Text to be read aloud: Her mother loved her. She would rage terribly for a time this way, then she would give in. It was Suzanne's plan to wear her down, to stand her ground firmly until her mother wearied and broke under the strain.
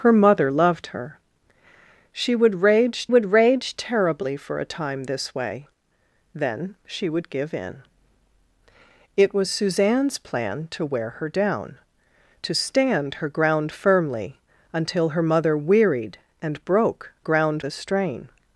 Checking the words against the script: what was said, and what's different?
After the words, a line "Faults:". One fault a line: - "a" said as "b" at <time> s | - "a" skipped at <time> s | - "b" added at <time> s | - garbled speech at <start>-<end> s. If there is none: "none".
Her mother loved her. She would rage would rage terribly for a time this way, then she would give in. It was Suzanne's plan to wear her down, to stand her ground firmly until her mother wearied and broke ground the strain.
Faults:
- "would rage" added at 3.1 s
- "under" said as "ground" at 17.2 s